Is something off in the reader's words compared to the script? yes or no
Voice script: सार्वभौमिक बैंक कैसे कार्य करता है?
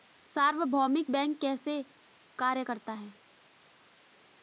no